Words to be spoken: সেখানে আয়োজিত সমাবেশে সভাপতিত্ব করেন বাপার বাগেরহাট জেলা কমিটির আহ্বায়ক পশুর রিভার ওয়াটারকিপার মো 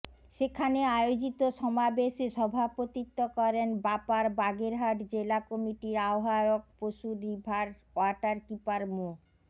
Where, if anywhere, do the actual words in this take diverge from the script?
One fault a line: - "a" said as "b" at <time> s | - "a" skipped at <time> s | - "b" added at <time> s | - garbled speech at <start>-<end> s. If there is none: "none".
none